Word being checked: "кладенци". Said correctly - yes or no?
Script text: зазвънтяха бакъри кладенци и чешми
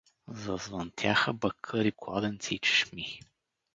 yes